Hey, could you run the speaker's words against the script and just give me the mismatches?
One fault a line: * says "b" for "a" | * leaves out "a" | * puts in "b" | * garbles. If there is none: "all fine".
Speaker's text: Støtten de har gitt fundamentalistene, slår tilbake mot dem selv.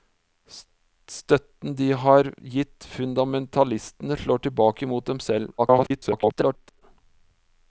* garbles